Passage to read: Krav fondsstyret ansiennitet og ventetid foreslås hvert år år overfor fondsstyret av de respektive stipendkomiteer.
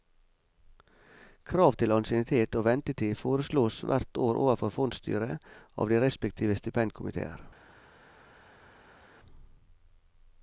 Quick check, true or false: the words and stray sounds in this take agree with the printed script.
false